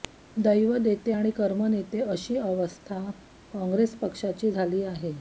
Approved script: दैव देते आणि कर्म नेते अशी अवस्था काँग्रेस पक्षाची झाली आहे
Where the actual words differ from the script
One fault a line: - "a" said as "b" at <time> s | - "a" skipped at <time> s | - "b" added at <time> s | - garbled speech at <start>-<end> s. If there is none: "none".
none